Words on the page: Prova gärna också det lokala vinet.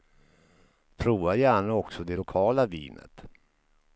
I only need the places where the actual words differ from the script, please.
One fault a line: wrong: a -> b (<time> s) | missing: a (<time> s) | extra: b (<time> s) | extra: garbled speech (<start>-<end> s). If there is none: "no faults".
no faults